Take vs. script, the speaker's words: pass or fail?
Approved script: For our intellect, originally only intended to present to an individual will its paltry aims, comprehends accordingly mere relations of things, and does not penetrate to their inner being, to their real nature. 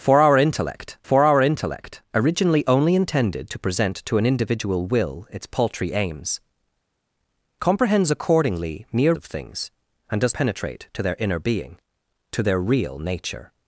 fail